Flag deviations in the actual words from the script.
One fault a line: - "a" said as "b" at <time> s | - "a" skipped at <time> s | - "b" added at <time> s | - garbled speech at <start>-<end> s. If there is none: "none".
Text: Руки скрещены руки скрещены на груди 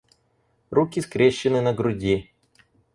- "руки скрещены" skipped at 1.6 s